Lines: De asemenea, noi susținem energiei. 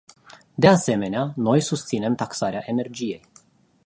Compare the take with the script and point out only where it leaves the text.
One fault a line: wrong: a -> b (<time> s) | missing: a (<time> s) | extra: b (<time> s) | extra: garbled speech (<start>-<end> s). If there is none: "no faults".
extra: taxarea (2.1 s)